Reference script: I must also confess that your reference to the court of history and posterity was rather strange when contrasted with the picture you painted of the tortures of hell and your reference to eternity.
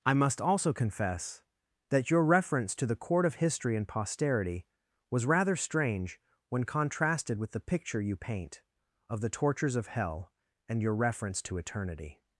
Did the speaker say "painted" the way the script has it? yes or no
no